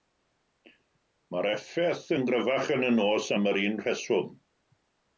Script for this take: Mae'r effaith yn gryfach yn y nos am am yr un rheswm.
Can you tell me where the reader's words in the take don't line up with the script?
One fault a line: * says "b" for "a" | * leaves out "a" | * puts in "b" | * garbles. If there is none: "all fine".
* leaves out "am"